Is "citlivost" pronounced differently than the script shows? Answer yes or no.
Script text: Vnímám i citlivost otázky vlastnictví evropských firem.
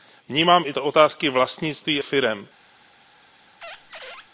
yes